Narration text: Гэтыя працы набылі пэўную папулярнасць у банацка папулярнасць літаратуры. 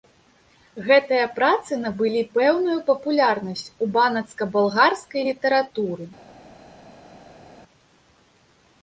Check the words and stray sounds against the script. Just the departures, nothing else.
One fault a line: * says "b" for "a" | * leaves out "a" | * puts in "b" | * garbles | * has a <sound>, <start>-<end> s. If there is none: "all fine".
* says "балгарскай" for "папулярнасць"